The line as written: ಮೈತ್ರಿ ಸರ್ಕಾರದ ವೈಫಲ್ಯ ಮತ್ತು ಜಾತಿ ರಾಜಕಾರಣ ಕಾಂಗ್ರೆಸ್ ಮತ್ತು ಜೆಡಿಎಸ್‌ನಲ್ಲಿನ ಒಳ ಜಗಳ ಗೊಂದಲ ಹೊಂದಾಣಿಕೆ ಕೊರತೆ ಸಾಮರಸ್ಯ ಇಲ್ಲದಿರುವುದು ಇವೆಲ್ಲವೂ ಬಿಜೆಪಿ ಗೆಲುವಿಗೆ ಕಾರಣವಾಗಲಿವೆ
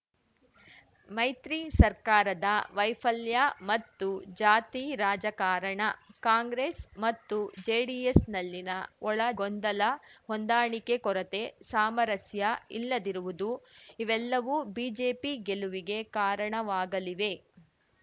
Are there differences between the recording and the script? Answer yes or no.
yes